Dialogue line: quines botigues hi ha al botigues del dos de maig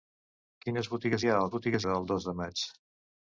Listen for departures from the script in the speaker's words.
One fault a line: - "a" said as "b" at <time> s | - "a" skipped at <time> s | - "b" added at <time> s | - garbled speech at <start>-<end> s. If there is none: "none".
none